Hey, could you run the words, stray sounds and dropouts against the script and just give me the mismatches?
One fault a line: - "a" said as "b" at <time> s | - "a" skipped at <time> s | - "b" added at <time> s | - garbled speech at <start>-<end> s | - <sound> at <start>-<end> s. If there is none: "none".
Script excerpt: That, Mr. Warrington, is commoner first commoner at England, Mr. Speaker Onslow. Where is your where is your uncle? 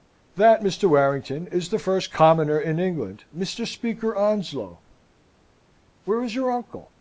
- "commoner" said as "the" at 1.7 s
- "at" said as "in" at 2.6 s
- "where is your" skipped at 6.5 s